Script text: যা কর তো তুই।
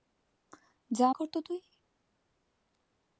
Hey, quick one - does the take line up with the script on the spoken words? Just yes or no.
yes